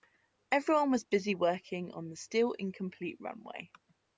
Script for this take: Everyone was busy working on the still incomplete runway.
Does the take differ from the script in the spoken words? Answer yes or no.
no